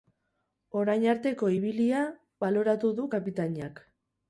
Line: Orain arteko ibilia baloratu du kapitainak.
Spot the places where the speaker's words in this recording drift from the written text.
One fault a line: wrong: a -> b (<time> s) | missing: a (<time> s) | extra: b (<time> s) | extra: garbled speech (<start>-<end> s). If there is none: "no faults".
no faults